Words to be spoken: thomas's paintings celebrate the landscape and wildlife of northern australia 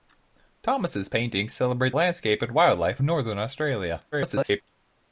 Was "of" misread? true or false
true